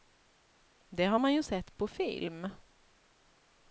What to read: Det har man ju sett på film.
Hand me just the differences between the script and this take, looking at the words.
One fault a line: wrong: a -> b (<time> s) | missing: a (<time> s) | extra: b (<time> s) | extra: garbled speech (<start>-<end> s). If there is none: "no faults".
no faults